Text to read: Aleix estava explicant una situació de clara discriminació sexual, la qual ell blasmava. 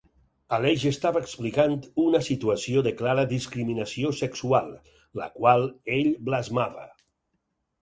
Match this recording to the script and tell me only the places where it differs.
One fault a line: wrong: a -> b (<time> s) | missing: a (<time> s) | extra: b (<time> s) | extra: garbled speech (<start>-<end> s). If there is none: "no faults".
no faults